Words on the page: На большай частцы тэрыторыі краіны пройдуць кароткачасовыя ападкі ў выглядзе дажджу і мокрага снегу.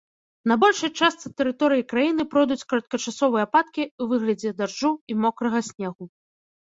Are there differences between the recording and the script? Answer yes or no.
no